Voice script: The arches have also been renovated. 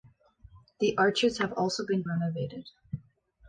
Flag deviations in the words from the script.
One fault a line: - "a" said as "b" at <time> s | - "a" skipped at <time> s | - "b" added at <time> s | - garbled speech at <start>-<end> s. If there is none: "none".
none